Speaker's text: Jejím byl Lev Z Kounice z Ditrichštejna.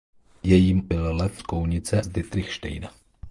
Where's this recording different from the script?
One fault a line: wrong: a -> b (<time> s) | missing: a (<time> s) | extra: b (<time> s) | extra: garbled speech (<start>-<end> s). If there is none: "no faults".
no faults